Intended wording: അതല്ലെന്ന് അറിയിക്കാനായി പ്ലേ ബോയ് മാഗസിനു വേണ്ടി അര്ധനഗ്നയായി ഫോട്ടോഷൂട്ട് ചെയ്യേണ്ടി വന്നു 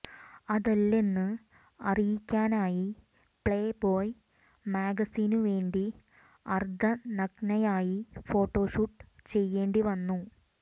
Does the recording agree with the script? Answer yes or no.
yes